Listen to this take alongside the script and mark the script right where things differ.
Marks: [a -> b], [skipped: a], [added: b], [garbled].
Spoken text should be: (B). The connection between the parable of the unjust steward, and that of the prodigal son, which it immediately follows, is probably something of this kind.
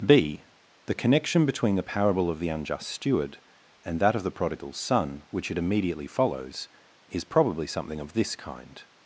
(B). The connection between the parable of the unjust steward, and that of the prodigal son, which it immediately follows, is probably something of this kind.